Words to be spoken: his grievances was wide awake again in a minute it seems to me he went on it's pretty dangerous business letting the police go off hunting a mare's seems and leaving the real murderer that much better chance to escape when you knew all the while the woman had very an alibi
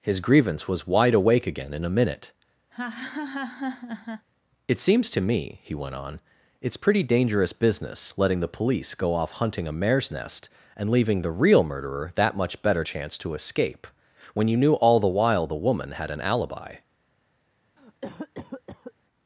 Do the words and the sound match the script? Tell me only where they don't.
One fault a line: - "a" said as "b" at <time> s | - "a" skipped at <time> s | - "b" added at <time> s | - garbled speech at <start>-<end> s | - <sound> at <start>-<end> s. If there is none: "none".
- "grievances" said as "grievance" at 0.2 s
- laugh at 2.7-4.3 s
- "seems" said as "nest" at 10.1 s
- "very" skipped at 16.1 s
- cough at 17.8-18.9 s